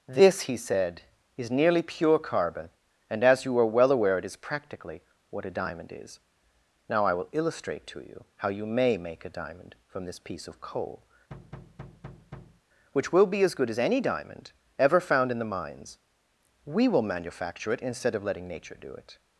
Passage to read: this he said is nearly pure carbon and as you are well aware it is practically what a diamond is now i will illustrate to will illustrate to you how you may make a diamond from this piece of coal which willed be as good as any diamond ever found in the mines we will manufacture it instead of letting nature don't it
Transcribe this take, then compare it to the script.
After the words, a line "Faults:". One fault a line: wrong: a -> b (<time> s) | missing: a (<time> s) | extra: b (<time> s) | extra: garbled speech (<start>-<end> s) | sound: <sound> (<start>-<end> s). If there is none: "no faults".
this he said is nearly pure carbon and as you are well aware it is practically what a diamond is now i will illustrate to you how you may make a diamond from this piece of coal which will be as good as any diamond ever found in the mines we will manufacture it instead of letting nature do it
Faults:
missing: will illustrate to (8.0 s)
sound: thud (11.3-12.6 s)
wrong: willed -> will (13.1 s)
wrong: don't -> do (18.8 s)